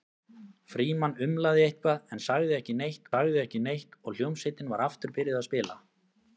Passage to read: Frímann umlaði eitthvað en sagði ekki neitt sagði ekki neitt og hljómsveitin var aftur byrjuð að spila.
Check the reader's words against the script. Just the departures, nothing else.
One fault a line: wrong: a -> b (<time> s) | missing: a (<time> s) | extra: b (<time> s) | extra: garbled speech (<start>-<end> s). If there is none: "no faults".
no faults